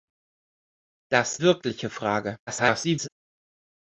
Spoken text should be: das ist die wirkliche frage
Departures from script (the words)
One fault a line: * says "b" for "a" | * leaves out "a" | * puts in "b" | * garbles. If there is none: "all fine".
* leaves out "ist die"
* garbles